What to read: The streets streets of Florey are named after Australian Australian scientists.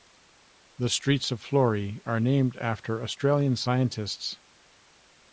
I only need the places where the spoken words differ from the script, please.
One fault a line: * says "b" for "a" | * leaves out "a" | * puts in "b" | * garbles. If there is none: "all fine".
* leaves out "streets"
* leaves out "Australian"